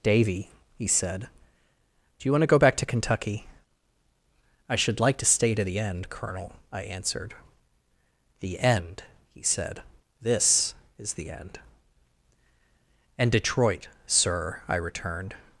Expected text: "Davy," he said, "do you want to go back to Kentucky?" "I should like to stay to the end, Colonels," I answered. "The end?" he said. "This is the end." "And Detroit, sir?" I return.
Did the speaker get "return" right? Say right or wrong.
wrong